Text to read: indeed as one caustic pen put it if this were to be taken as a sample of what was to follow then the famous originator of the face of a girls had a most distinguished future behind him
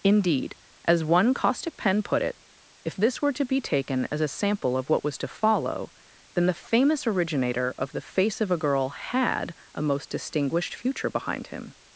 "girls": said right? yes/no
no